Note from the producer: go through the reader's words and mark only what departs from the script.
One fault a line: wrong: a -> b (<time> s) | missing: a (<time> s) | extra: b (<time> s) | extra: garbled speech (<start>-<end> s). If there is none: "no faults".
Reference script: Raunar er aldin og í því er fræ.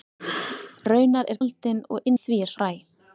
no faults